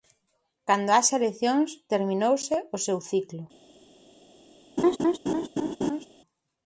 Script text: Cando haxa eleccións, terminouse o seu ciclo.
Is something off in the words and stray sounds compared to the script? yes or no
yes